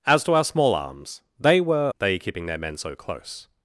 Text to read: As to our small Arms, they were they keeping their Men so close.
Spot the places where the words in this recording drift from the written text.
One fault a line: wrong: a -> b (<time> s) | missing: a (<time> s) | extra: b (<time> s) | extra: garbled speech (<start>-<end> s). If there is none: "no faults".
no faults